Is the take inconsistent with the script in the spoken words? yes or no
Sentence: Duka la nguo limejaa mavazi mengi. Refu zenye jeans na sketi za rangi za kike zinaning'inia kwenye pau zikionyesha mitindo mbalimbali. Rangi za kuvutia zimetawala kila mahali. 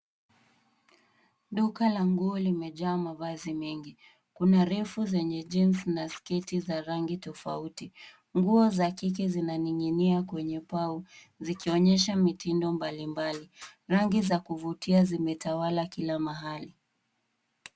yes